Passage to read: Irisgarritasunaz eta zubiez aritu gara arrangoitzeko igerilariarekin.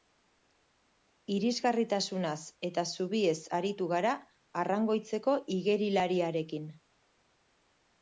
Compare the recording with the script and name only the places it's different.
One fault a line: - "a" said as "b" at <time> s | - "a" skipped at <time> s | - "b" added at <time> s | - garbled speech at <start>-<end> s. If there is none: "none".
none